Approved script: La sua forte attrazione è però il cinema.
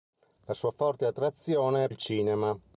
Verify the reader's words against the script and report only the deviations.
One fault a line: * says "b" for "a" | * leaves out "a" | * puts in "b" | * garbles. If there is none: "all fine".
* leaves out "però"